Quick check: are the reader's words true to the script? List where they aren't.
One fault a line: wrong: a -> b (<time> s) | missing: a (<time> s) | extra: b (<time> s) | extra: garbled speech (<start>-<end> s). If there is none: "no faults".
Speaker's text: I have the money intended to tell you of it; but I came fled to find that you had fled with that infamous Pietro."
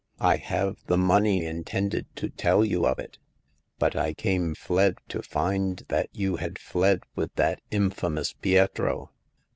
no faults